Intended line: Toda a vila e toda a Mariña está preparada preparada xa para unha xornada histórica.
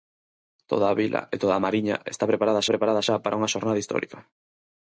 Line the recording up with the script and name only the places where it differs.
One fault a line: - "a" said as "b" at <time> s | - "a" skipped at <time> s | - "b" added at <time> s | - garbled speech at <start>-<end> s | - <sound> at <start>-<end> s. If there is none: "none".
none